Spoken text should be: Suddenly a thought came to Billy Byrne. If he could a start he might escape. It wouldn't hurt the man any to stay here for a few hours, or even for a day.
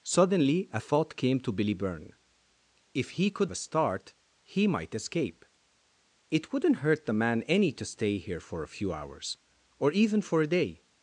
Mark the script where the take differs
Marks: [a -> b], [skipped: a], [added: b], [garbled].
Suddenly a thought came to Billy Byrne. If he could a start he might escape. It wouldn't hurt the man any to stay here for a few hours, or even for a day.